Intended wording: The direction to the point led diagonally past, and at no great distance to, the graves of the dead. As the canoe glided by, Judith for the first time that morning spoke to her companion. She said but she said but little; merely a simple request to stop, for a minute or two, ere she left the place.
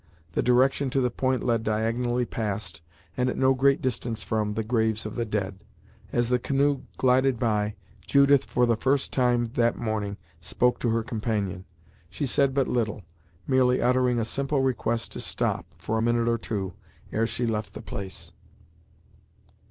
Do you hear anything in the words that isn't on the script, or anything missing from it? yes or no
yes